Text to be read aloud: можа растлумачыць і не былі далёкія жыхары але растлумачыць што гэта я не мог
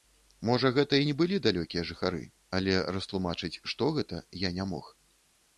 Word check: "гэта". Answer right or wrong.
right